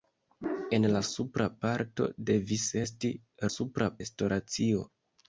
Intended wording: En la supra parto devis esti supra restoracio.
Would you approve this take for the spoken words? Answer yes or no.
yes